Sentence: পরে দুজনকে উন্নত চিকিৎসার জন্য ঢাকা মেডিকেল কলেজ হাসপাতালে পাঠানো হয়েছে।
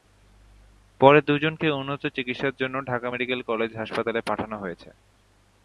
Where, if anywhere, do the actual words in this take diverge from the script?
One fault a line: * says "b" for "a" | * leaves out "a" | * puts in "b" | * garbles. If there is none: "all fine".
all fine